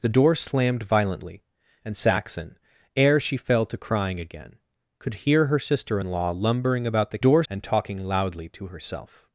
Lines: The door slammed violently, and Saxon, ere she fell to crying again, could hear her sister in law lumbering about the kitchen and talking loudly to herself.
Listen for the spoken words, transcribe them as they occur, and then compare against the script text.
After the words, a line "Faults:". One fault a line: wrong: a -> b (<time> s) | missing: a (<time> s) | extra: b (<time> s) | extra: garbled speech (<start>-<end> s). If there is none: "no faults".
The door slammed violently, and Saxon, ere she fell to crying again, could hear her sister in law lumbering about the door and talking loudly to herself.
Faults:
wrong: kitchen -> door (7.2 s)